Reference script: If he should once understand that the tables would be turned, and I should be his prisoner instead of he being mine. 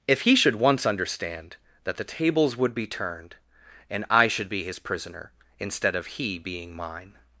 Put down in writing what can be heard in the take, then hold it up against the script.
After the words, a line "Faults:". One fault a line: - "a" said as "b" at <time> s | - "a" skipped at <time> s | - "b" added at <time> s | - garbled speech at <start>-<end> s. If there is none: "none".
If he should once understand that the tables would be turned, and I should be his prisoner instead of he being mine.
Faults:
none